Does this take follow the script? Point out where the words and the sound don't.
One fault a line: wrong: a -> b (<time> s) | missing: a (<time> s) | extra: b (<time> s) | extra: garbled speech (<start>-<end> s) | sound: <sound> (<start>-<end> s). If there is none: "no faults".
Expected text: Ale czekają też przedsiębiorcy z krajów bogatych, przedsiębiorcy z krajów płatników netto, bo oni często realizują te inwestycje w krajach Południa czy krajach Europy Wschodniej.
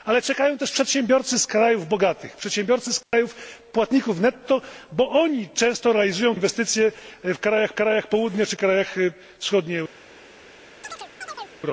sound: dropout (3.0-3.1 s)
missing: te (6.4 s)
extra: krajach (7.7 s)
sound: chirp (10.8-11.6 s)